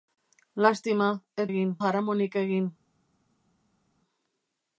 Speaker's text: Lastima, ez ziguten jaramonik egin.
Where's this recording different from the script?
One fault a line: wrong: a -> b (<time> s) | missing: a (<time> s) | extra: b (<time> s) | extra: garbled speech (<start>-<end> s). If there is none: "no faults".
wrong: ziguten -> egin (1.5 s)